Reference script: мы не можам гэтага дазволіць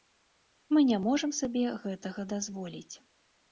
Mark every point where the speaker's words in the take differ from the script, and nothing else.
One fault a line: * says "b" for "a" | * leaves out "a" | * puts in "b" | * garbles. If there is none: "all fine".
* puts in "сабе"